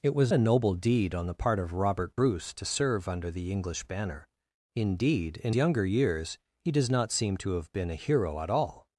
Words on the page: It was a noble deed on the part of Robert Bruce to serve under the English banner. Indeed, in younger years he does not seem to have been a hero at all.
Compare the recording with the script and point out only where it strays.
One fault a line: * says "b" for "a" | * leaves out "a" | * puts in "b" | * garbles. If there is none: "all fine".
all fine